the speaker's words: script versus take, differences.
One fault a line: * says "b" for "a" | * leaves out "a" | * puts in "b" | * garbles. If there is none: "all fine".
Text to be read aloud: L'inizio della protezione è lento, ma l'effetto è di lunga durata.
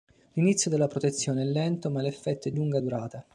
* leaves out "di"